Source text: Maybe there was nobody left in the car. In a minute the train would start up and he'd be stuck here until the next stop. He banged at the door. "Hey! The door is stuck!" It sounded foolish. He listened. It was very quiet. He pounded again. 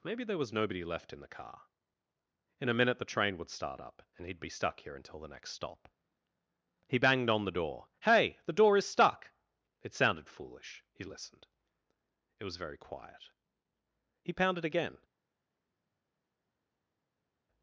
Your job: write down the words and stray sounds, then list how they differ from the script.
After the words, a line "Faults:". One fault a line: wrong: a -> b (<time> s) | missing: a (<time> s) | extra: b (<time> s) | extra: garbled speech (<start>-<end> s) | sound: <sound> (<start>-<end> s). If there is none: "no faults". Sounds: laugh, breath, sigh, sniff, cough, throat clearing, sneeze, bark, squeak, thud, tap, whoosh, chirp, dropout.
Maybe there was nobody left in the car. In a minute the train would start up and he'd be stuck here until the next stop. He banged on the door. "Hey! The door is stuck!" It sounded foolish. He listened. It was very quiet. He pounded again.
Faults:
wrong: at -> on (7.3 s)